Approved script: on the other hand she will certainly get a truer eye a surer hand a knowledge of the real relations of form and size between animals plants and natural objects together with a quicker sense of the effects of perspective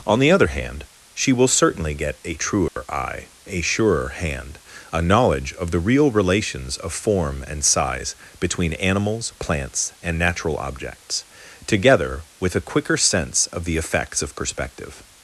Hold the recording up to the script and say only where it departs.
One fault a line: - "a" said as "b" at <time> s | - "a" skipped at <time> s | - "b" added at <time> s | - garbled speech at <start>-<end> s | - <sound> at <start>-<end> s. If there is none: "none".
- dropout at 2.7-2.8 s